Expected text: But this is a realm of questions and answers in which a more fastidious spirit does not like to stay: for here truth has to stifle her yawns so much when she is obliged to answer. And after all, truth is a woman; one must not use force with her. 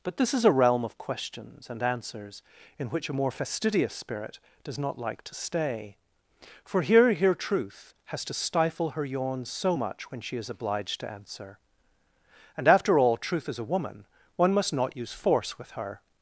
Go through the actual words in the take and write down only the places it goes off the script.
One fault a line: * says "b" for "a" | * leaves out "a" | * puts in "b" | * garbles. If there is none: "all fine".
* puts in "here"